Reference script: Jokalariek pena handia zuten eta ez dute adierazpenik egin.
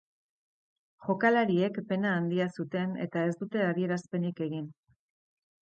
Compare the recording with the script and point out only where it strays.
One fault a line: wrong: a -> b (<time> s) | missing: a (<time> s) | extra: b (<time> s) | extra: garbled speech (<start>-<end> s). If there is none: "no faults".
no faults